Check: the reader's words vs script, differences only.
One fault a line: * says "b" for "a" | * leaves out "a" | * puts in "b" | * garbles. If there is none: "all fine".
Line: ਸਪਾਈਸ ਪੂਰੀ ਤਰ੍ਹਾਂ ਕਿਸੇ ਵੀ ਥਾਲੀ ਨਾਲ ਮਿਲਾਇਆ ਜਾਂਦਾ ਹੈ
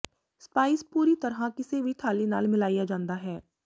all fine